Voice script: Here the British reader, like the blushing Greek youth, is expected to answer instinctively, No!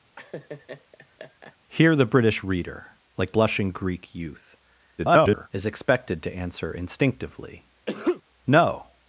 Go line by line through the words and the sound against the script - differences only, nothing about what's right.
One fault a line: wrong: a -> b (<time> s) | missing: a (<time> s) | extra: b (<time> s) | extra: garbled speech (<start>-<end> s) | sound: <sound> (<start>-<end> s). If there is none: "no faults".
sound: laugh (0.2-1.6 s)
missing: the (3.3 s)
extra: garbled speech (5.0-5.5 s)
sound: sneeze (7.9-8.2 s)